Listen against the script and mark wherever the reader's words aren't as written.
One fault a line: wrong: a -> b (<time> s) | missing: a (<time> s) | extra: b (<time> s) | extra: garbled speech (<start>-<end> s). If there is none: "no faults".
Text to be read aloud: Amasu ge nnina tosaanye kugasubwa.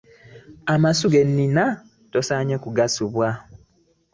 no faults